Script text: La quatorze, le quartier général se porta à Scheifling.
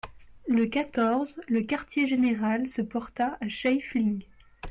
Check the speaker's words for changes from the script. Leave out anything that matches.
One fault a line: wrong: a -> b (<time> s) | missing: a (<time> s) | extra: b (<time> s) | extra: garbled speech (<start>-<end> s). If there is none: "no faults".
wrong: La -> Le (0.5 s)